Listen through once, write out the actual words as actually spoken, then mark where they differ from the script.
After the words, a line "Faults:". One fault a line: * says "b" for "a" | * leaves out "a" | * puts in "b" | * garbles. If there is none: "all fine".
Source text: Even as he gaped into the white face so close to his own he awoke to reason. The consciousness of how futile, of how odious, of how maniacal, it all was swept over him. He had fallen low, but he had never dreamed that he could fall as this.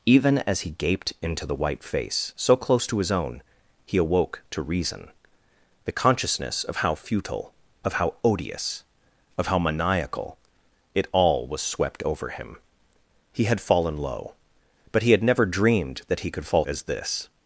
Even as he gaped into the white face so close to his own he awoke to reason. The consciousness of how futile, of how odious, of how maniacal, it all was swept over him. He had fallen low, but he had never dreamed that he could fall as this.
Faults:
all fine